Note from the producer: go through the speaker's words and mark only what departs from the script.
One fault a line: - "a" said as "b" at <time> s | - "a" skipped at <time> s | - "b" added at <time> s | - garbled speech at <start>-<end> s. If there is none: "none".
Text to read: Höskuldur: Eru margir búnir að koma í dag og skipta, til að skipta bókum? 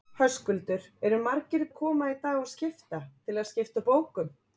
- "búnir" skipped at 1.6 s